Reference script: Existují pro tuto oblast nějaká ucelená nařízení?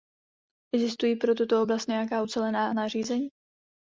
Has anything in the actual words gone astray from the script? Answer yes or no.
no